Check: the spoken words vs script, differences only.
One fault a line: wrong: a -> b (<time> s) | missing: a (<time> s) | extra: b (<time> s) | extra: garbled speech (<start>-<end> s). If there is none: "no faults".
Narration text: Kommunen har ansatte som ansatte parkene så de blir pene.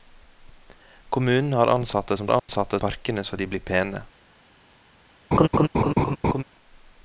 no faults